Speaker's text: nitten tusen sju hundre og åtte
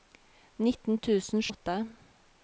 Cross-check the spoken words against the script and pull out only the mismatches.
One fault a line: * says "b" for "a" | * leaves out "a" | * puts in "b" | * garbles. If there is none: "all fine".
* leaves out "sju hundre"